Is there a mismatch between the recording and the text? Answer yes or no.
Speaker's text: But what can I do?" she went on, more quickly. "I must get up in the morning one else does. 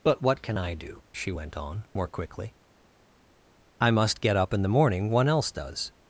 no